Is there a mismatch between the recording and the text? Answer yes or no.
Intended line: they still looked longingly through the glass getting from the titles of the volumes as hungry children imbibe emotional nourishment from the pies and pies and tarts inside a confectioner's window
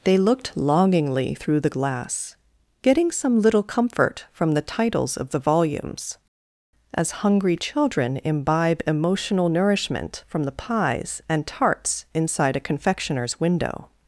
yes